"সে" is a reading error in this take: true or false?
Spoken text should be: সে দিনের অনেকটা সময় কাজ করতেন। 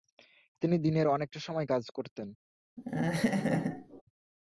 true